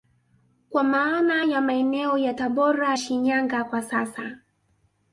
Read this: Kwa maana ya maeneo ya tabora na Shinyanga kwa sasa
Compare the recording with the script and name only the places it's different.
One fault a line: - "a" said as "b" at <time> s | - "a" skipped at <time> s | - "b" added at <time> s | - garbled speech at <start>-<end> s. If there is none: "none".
- "na" skipped at 3.0 s